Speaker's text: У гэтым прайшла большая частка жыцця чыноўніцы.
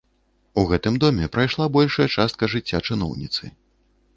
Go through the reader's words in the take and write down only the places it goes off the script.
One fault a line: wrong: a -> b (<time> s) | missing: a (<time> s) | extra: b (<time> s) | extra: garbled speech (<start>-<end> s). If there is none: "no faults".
extra: доме (1.0 s)